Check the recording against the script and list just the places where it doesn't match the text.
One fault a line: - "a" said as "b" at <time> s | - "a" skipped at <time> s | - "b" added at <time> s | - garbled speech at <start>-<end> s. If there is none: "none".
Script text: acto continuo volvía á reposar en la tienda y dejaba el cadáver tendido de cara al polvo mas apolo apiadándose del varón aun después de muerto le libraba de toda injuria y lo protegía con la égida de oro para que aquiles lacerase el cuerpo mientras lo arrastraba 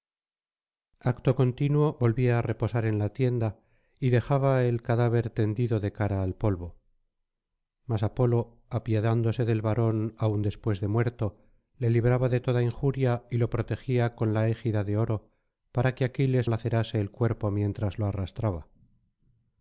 none